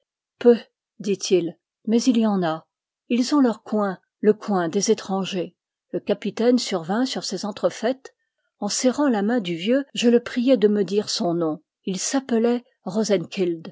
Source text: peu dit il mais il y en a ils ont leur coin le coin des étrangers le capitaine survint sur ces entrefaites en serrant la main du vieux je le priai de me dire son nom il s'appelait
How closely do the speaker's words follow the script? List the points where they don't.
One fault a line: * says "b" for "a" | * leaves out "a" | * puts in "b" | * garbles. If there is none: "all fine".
all fine